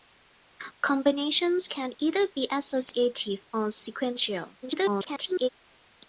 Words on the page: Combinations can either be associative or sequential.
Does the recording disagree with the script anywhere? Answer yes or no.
yes